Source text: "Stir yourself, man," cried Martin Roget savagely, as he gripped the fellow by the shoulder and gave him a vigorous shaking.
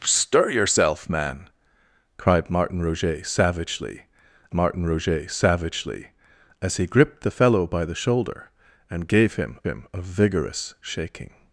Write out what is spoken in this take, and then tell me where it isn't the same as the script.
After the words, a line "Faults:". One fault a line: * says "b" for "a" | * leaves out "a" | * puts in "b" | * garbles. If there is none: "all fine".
"Stir yourself, man," cried Martin Roget savagely Martin Roget savagely, as he gripped the fellow by the shoulder and gave him him a vigorous shaking.
Faults:
* puts in "Martin Roget savagely"
* puts in "him"